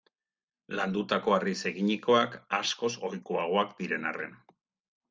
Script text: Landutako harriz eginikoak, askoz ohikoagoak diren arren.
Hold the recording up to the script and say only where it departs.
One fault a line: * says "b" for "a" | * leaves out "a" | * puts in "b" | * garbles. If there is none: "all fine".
all fine